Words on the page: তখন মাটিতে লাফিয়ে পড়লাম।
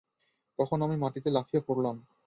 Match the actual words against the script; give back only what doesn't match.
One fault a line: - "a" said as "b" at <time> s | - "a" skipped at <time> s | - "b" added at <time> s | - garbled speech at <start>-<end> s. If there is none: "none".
- "আমি" added at 0.8 s